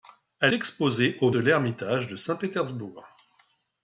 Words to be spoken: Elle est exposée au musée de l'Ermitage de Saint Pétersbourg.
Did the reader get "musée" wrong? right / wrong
wrong